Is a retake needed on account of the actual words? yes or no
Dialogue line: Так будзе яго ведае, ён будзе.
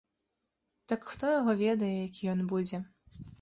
yes